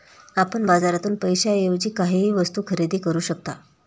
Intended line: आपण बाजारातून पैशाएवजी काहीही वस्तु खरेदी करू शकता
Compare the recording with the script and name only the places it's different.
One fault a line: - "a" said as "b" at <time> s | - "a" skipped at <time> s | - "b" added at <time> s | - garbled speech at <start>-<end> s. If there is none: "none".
none